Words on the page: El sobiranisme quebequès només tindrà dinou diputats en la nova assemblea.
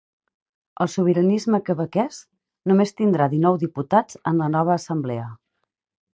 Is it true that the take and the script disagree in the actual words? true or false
false